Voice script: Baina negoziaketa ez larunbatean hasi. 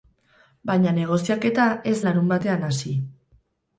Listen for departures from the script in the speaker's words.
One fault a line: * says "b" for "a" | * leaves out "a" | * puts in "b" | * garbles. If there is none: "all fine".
all fine